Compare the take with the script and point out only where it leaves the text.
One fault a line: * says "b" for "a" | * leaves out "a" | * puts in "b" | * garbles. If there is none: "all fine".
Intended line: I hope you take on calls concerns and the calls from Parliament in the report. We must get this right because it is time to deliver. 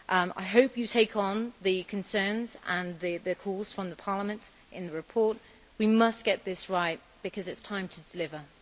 * says "the" for "calls"